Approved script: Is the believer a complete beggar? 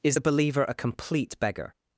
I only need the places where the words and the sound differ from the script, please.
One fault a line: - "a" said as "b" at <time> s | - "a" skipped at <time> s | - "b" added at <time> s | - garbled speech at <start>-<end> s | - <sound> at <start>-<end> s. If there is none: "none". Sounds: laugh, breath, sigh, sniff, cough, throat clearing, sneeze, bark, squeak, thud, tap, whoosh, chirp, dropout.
none